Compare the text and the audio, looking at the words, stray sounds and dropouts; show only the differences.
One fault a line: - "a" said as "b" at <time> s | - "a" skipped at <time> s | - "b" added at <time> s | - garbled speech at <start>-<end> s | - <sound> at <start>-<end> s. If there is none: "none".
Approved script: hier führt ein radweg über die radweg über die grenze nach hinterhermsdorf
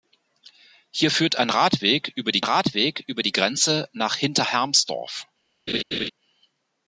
- laugh at 5.7-6.1 s